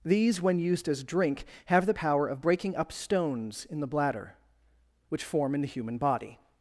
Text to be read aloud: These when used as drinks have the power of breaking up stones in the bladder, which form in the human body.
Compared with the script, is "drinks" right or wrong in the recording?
wrong